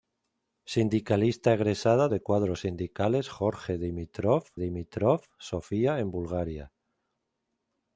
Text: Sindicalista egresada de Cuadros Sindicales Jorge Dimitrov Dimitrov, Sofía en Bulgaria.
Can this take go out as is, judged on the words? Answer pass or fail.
pass